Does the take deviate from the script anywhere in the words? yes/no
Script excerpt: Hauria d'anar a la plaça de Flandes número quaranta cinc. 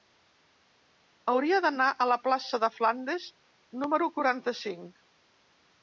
no